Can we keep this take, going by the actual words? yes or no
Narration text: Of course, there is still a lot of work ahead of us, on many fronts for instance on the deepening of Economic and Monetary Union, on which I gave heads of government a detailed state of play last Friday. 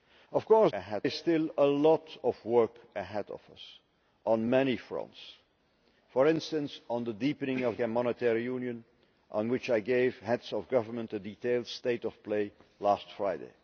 no